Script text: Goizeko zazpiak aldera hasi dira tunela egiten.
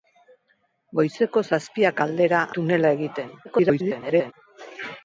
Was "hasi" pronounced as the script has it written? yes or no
no